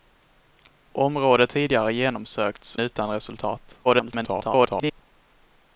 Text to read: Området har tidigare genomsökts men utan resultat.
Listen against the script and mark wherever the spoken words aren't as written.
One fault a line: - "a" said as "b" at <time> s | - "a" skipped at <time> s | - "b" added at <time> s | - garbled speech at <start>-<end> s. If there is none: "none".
- "har" skipped at 1.5 s
- "men" skipped at 2.8 s
- garbled speech at 3.8-5.0 s